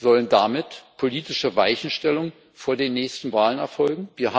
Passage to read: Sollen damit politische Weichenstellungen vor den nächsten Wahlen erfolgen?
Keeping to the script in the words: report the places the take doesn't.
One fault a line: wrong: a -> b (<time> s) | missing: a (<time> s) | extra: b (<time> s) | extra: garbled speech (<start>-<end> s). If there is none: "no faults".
no faults